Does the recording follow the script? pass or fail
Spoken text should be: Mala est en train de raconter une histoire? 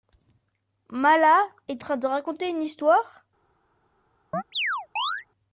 fail